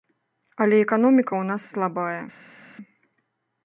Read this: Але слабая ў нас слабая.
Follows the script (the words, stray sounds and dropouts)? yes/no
no